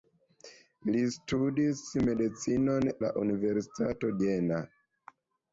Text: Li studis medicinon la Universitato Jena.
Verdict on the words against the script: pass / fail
pass